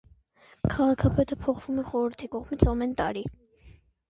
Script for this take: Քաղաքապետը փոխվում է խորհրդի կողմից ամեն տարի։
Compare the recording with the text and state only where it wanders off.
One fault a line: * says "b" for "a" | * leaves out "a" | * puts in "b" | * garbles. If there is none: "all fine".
all fine